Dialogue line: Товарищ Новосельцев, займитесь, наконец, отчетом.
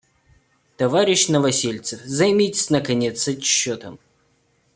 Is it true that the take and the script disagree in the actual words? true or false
false